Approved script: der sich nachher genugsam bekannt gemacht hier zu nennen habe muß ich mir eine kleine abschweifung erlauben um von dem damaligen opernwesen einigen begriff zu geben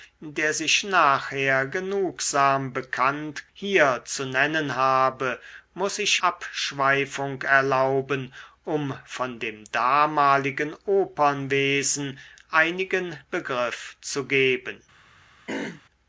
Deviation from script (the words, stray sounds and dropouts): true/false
true